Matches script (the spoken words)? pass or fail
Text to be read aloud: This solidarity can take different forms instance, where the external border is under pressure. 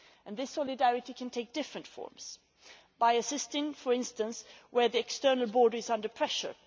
fail